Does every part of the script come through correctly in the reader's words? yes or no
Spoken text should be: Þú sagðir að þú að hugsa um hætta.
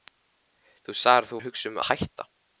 yes